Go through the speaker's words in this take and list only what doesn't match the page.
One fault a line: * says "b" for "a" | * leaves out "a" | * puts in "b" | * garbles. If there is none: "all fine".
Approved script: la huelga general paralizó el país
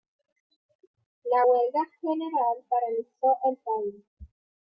all fine